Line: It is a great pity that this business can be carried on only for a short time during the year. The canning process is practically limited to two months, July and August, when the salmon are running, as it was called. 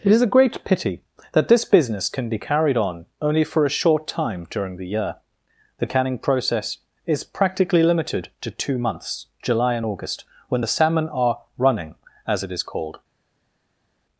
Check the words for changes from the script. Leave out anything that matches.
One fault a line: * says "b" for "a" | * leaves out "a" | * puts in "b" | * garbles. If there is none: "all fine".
* says "is" for "was"